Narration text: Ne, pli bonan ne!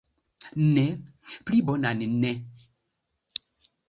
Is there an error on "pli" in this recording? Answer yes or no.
no